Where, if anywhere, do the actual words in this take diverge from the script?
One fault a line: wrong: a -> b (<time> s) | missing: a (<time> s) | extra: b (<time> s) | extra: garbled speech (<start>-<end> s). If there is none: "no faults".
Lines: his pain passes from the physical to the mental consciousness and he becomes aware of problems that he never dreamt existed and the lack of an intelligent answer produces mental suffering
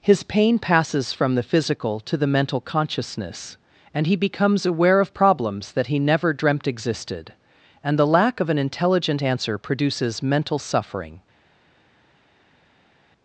no faults